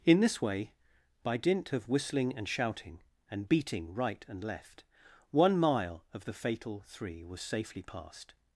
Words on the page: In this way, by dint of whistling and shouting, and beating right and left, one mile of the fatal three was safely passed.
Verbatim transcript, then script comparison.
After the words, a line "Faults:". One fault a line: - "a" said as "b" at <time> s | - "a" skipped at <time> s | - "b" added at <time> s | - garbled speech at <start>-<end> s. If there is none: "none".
In this way, by dint of whistling and shouting, and beating right and left, one mile of the fatal three was safely passed.
Faults:
none